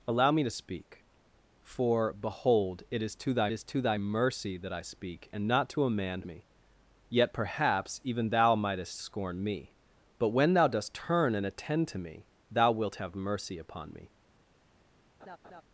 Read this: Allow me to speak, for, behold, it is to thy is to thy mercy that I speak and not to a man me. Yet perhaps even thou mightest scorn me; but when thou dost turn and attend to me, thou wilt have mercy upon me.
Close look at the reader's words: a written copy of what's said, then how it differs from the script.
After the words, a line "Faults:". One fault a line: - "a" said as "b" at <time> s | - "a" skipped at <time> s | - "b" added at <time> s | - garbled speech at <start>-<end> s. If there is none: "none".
Allow me to speak, for, behold, it is to thy is to thy mercy that I speak and not to a man me. Yet perhaps even thou mightest scorn me; but when thou dost turn and attend to me, thou wilt have mercy upon me.
Faults:
none